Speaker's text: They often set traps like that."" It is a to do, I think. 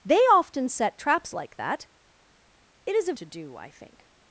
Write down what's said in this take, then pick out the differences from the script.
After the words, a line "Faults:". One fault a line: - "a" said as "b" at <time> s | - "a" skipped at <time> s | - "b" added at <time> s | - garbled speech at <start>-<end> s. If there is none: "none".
They often set traps like that."" It is a to do, I think.
Faults:
none